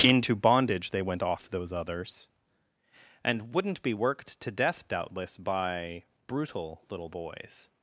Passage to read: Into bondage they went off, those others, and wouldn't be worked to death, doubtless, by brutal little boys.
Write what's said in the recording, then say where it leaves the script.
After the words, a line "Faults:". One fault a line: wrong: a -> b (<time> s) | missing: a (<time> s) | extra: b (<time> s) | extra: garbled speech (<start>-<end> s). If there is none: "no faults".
Into bondage they went off, those others, and wouldn't be worked to death, doubtless, by brutal little boys.
Faults:
no faults